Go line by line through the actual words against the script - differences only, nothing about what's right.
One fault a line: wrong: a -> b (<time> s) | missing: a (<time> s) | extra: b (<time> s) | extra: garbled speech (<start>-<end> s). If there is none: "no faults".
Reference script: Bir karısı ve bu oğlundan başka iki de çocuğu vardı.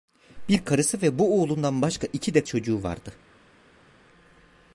no faults